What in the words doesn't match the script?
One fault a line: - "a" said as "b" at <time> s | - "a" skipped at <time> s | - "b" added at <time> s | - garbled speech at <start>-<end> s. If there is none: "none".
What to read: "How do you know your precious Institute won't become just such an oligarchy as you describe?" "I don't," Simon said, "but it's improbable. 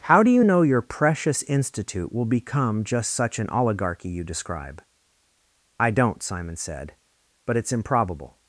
- "won't" said as "will" at 2.1 s
- "as" skipped at 4.1 s